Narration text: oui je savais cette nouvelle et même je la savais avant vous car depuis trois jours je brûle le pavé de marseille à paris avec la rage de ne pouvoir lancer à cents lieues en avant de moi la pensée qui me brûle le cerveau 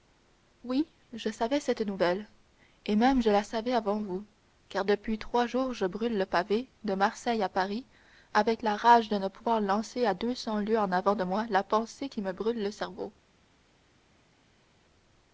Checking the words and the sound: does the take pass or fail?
fail